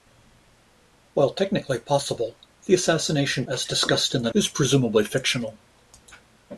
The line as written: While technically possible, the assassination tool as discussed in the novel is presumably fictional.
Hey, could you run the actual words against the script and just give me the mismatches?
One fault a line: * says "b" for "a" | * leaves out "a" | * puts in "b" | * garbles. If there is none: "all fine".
* leaves out "tool"
* leaves out "novel"